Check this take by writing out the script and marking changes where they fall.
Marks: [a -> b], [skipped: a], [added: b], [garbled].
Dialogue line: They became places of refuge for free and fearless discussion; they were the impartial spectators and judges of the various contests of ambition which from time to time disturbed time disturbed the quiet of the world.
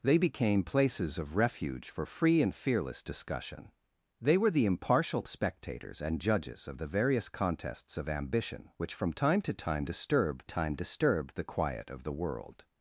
They became places of refuge for free and fearless discussion; they were the impartial spectators and judges of the various contests of ambition which from time to time disturbed time disturbed the quiet of the world.